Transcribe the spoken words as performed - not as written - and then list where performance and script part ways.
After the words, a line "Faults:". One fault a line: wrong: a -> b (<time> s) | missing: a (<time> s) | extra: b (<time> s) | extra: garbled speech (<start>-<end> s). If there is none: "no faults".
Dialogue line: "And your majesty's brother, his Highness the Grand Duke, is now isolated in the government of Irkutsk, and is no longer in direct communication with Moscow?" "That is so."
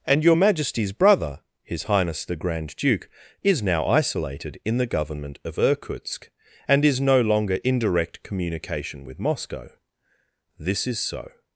"And your majesty's brother, his Highness the Grand Duke, is now isolated in the government of Irkutsk, and is no longer in direct communication with Moscow?" "This is so."
Faults:
wrong: That -> This (10.6 s)